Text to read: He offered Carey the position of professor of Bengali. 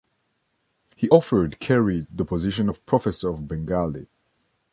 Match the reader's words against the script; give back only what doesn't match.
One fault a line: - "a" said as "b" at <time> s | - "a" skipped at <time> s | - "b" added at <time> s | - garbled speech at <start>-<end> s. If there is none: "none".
none